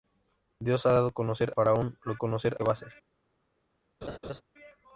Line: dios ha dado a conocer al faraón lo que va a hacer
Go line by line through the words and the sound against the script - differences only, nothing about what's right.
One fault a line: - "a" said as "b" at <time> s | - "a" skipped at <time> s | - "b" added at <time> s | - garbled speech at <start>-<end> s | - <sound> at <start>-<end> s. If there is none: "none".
- "al" skipped at 1.5 s
- "que" said as "conocer" at 2.1 s
- laugh at 4.0-4.4 s